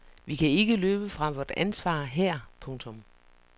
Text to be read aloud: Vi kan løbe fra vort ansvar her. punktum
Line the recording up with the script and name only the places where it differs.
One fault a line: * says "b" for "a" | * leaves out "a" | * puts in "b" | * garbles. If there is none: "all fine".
* puts in "ikke"